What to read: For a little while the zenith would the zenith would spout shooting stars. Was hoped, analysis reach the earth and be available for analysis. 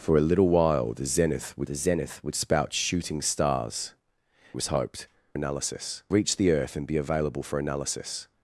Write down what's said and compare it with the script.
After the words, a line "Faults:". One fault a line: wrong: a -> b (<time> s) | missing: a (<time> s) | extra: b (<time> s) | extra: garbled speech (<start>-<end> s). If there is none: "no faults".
For a little while the zenith would the zenith would spout shooting stars. Was hoped, analysis reach the earth and be available for analysis.
Faults:
no faults